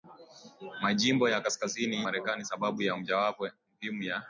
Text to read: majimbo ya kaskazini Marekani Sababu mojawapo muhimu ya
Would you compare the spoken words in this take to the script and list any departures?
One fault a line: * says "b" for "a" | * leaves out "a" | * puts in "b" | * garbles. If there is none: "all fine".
all fine